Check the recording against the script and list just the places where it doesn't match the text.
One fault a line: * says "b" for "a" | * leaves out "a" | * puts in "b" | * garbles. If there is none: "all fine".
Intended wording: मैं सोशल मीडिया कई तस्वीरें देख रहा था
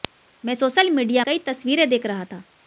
all fine